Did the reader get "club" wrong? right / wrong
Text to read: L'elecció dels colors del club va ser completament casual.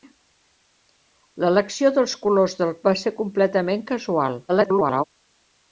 wrong